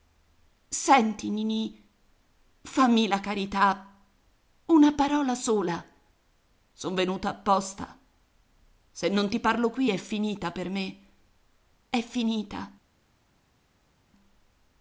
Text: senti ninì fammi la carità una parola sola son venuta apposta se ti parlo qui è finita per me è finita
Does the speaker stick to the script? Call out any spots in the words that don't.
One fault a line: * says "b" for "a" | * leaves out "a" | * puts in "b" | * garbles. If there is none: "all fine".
* puts in "non"